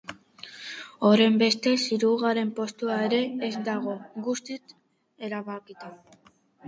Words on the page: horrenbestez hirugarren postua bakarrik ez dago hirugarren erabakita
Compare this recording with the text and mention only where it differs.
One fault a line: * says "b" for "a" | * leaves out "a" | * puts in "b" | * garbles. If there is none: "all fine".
* says "ere" for "bakarrik"
* says "guztiz" for "hirugarren"